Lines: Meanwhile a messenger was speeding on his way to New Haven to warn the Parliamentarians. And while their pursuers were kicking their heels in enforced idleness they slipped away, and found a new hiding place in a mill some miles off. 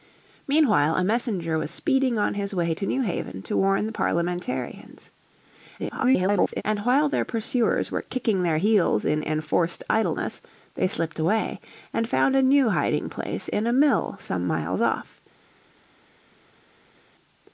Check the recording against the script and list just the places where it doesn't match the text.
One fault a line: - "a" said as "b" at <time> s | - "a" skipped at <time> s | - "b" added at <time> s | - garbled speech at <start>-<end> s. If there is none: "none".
- garbled speech at 5.8-6.6 s